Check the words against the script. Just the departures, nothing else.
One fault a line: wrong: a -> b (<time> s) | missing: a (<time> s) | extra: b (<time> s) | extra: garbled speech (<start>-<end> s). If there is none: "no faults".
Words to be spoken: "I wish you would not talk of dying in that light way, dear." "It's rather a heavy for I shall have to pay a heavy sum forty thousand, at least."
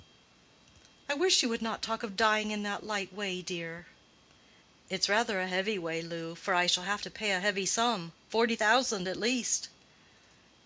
extra: way Lou (5.8 s)